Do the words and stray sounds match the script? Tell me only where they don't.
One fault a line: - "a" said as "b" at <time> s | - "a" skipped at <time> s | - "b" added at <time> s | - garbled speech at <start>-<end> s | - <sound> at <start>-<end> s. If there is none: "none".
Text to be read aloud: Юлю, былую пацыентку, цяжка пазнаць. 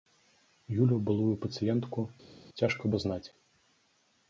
none